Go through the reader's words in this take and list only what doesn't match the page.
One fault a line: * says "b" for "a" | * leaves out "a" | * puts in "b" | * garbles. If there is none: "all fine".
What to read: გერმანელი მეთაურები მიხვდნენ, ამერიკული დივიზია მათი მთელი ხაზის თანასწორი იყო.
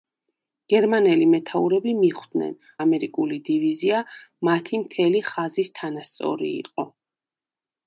all fine